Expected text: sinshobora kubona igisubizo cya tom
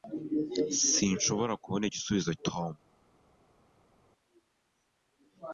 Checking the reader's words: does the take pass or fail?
fail